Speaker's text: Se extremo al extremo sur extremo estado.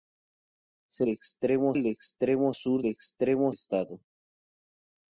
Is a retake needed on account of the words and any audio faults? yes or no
no